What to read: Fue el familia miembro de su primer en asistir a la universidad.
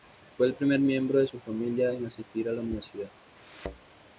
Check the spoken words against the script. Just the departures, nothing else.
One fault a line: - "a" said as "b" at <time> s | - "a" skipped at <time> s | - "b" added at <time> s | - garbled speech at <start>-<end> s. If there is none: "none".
- "familia" said as "primer" at 0.5 s
- "primer" said as "familia" at 1.4 s